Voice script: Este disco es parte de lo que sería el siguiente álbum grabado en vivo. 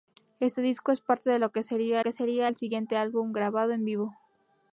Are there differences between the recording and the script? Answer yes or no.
yes